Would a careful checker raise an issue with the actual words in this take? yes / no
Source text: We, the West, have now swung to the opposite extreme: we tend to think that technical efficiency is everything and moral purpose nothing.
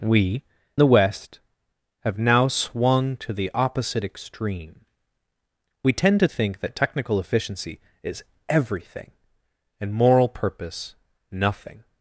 no